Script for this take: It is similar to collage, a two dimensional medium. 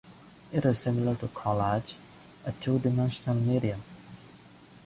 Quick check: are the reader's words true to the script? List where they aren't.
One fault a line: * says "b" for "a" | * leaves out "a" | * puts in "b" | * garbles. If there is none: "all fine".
all fine